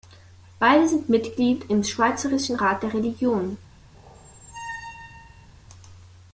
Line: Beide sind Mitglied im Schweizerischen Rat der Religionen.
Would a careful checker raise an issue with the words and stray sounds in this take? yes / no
yes